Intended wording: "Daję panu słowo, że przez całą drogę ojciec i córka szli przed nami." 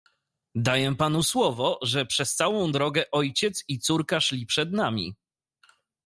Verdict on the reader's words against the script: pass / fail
pass